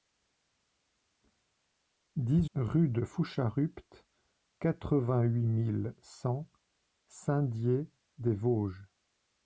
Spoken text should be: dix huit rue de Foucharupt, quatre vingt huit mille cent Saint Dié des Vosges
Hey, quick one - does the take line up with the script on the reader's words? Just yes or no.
no